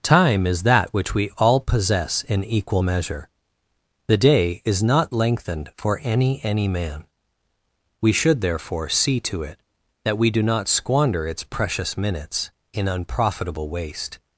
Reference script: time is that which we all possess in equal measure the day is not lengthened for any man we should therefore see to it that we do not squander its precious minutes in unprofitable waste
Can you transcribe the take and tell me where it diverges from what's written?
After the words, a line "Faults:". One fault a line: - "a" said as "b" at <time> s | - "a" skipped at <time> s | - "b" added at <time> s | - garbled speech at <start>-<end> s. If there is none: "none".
time is that which we all possess in equal measure the day is not lengthened for any any man we should therefore see to it that we do not squander its precious minutes in unprofitable waste
Faults:
- "any" added at 6.4 s